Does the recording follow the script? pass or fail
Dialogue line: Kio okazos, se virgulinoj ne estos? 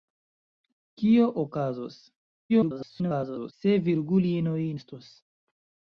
fail